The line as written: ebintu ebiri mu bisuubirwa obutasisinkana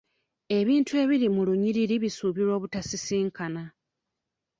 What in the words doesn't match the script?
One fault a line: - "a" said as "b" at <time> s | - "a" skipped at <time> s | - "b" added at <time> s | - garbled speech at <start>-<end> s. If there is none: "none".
- "lunyiriri" added at 1.5 s